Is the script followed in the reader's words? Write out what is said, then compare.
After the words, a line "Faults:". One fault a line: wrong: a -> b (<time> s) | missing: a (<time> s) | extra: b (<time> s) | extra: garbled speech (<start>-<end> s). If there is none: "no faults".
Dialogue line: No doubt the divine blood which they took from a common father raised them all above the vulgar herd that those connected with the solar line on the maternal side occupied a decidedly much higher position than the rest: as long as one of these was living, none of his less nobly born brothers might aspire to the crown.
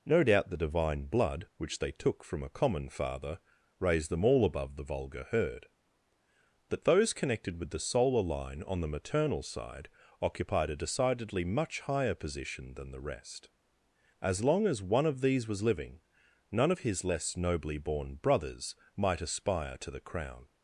No doubt the divine blood which they took from a common father raised them all above the vulgar herd that those connected with the solar line on the maternal side occupied a decidedly much higher position than the rest: as long as one of these was living, none of his less nobly born brothers might aspire to the crown.
Faults:
no faults